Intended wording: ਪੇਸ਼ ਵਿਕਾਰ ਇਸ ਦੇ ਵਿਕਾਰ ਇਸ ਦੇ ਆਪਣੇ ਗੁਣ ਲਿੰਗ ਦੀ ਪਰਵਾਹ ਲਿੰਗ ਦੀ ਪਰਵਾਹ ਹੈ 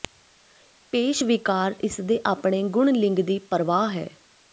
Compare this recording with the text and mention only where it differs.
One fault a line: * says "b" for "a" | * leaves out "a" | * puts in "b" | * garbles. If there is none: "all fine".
* leaves out "ਵਿਕਾਰ ਇਸ ਦੇ"
* leaves out "ਲਿੰਗ ਦੀ ਪਰਵਾਹ"